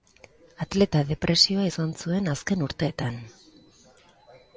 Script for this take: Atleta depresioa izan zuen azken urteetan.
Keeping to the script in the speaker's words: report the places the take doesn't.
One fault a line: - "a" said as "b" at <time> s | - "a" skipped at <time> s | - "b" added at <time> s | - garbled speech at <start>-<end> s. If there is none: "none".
none